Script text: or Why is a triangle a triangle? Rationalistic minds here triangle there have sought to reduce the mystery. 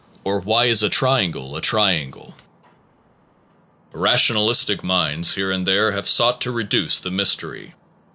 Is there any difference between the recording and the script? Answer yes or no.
yes